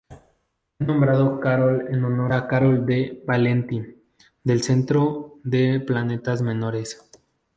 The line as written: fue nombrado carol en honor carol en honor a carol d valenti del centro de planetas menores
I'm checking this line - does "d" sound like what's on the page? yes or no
yes